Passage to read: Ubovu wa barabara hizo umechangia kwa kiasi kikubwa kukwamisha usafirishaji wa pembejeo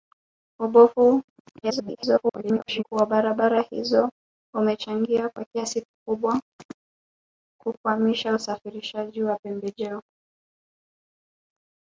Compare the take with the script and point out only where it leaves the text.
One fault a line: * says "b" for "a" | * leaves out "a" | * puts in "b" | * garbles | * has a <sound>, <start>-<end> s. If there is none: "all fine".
* garbles